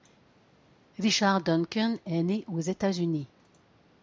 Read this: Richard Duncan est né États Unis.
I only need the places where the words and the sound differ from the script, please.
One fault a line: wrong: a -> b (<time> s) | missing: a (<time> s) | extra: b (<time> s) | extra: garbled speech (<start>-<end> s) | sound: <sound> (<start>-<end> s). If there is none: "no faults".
extra: aux (2.5 s)